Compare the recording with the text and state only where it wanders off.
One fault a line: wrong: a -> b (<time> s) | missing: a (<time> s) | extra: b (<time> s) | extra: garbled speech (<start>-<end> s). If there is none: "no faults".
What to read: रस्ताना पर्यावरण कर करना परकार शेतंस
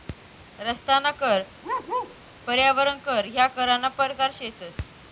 extra: कर (1.2 s)
extra: ह्या (3.3 s)